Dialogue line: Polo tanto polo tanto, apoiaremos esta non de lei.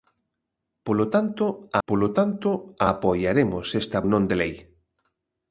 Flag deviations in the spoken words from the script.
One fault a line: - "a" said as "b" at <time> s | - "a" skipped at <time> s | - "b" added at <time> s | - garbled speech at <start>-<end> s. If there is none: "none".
none